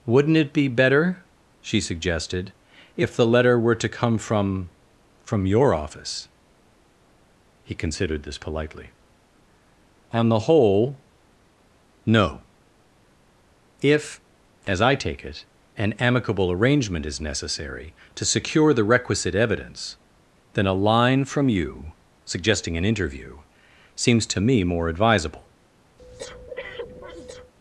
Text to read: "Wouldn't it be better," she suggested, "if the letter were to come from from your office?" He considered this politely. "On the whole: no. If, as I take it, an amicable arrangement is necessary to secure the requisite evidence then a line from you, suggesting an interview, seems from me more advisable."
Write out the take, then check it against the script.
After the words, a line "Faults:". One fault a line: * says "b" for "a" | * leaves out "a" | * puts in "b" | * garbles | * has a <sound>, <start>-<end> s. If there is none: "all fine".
"Wouldn't it be better," she suggested, "if the letter were to come from from your office?" He considered this politely. "On the whole: no. If, as I take it, an amicable arrangement is necessary to secure the requisite evidence then a line from you, suggesting an interview, seems to me more advisable."
Faults:
* says "to" for "from"
* has a breath, 26.0-27.5 s